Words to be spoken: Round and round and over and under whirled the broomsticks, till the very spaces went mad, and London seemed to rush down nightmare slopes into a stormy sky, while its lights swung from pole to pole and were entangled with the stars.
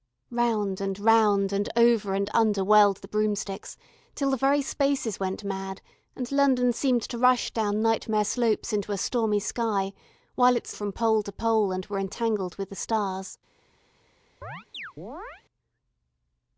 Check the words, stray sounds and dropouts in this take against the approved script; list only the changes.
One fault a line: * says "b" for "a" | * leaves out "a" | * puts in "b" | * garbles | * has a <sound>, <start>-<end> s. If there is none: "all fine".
* leaves out "lights swung"
* has a chirp, 14.4-15.4 s